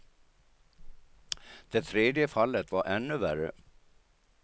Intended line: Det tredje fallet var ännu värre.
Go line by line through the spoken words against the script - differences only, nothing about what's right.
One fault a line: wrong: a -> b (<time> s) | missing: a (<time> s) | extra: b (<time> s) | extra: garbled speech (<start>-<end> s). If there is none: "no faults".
no faults